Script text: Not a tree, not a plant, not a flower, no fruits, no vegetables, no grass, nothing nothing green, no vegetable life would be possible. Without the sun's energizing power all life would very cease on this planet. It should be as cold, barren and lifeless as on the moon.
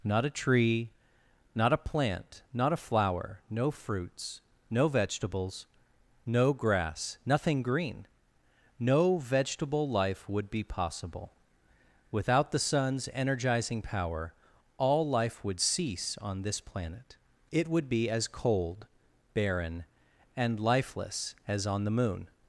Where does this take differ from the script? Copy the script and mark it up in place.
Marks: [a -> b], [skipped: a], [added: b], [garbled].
Not a tree, not a plant, not a flower, no fruits, no vegetables, no grass, nothing [skipped: nothing] green, no vegetable life would be possible. Without the sun's energizing power all life would [skipped: very] cease on this planet. It [should -> would] be as cold, barren and lifeless as on the moon.